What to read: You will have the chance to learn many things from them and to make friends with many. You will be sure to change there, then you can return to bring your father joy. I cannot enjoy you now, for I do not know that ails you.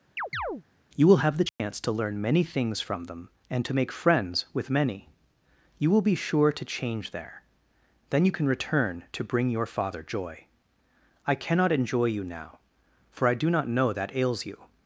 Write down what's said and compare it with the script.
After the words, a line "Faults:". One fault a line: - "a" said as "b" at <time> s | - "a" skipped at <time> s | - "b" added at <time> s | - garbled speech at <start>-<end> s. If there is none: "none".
You will have the chance to learn many things from them and to make friends with many. You will be sure to change there, then you can return to bring your father joy. I cannot enjoy you now, for I do not know that ails you.
Faults:
none